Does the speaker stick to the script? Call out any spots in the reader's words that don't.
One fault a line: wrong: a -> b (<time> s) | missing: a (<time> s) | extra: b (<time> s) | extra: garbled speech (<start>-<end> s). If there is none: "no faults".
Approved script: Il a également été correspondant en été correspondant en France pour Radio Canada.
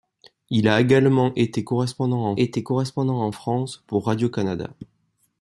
no faults